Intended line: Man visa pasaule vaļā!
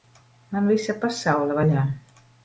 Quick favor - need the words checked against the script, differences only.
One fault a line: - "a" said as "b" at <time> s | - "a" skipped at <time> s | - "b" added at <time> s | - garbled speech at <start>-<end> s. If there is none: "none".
none